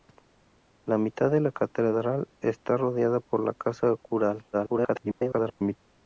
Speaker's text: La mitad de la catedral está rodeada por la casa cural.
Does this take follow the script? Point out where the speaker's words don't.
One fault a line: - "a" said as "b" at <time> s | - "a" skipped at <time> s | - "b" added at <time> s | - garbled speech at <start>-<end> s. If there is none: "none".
- garbled speech at 4.5-5.8 s